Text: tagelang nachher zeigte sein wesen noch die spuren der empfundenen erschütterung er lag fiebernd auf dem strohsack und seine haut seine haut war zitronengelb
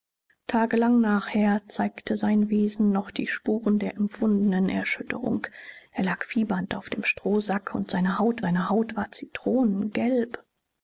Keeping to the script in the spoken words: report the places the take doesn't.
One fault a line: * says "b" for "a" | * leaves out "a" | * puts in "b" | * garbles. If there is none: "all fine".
all fine